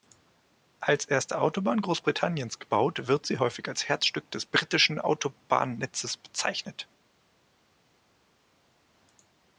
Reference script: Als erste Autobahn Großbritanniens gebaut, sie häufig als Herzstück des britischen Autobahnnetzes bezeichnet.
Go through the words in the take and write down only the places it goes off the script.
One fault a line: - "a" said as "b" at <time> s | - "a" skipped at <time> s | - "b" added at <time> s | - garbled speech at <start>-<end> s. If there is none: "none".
- "wird" added at 3.1 s